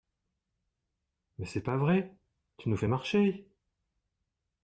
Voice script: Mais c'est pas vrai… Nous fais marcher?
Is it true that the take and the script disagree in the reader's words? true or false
true